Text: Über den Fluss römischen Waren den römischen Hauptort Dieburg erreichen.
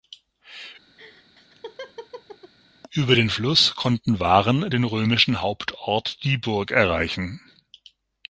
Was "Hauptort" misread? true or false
false